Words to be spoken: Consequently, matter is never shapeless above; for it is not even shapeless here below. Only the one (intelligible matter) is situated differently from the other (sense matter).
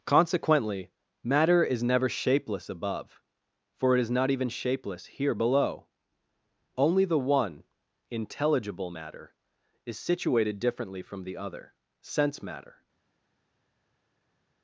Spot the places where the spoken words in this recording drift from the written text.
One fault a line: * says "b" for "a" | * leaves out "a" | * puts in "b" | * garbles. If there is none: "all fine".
all fine